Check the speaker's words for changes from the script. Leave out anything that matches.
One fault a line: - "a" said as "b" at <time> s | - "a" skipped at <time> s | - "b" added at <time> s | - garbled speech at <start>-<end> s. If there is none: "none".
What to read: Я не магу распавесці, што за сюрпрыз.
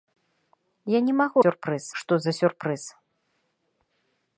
- "распавесці" said as "сюрпрыз" at 1.4 s